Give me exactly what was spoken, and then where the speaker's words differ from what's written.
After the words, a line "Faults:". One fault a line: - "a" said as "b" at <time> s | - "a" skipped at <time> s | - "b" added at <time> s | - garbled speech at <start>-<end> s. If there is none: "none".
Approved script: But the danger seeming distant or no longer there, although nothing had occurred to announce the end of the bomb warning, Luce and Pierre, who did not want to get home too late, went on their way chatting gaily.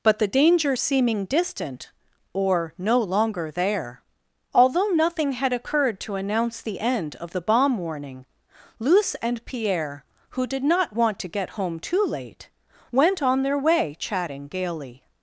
But the danger seeming distant or no longer there, although nothing had occurred to announce the end of the bomb warning, Luce and Pierre, who did not want to get home too late, went on their way chatting gaily.
Faults:
none